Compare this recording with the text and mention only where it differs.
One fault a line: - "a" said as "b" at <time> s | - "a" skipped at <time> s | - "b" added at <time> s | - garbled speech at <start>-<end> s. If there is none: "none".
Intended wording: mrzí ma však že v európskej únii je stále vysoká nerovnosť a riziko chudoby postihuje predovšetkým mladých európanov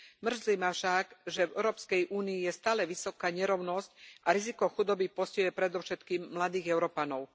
none